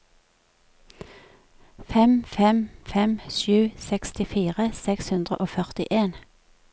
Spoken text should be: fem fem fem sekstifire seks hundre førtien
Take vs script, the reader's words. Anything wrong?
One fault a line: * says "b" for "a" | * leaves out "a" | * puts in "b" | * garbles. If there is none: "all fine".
* puts in "sju"
* puts in "og"